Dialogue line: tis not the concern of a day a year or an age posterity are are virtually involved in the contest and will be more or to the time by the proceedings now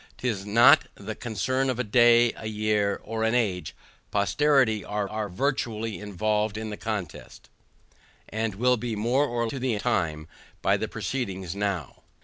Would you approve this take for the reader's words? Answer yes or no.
yes